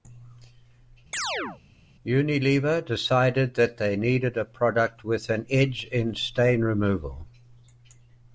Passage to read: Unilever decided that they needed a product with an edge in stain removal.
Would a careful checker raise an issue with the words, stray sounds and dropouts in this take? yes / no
yes